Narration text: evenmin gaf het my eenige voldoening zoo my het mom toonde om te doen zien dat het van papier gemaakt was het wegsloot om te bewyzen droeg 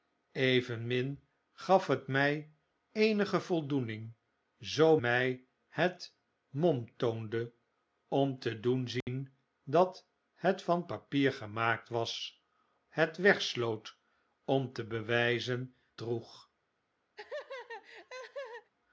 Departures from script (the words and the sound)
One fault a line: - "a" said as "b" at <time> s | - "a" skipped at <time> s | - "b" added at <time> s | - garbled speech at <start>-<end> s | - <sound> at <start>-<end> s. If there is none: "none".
- dropout at 9.0-9.1 s
- laugh at 17.2-18.7 s